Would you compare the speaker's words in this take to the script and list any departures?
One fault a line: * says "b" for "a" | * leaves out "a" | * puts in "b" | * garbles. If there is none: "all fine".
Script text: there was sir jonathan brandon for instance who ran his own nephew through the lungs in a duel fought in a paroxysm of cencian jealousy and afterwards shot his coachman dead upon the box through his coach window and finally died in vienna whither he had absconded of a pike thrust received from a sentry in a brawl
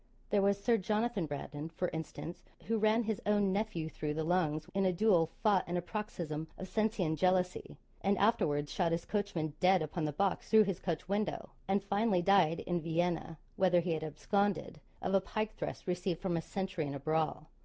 all fine